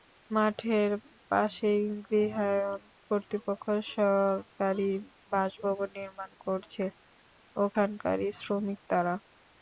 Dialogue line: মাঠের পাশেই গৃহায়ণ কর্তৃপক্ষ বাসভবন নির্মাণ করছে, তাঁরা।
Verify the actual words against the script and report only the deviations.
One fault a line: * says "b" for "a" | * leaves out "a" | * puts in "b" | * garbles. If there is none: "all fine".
* puts in "সরকারি"
* puts in "ওখানকারই শ্রমিক"